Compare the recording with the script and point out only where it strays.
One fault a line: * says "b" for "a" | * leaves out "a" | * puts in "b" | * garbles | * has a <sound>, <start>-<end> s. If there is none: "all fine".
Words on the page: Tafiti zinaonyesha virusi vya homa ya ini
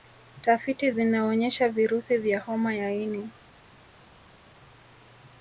all fine